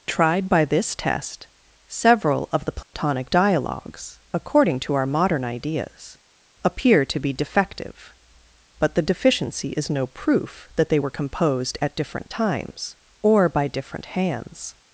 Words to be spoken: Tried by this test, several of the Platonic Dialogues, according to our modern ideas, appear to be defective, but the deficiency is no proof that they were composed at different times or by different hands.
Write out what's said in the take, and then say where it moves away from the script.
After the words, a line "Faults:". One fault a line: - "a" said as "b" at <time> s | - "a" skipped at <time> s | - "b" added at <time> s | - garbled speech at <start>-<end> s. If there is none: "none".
Tried by this test, several of the Platonic Dialogues, according to our modern ideas, appear to be defective, but the deficiency is no proof that they were composed at different times or by different hands.
Faults:
none